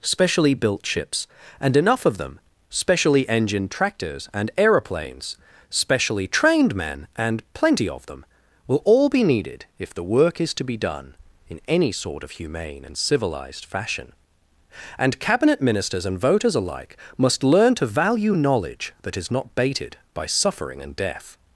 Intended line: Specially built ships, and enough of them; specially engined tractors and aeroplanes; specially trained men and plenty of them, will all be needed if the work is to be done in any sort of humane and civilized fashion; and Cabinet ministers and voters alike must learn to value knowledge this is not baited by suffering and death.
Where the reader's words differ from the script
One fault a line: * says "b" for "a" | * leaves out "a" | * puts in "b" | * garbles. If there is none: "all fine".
* says "that" for "this"